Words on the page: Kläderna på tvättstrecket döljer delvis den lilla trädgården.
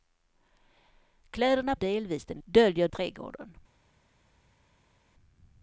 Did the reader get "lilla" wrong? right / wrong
wrong